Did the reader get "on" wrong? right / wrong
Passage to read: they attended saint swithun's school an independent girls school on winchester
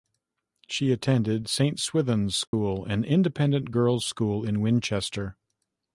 wrong